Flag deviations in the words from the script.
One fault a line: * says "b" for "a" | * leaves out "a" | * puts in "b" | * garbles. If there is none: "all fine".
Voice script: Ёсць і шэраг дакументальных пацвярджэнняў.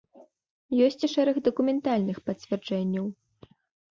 all fine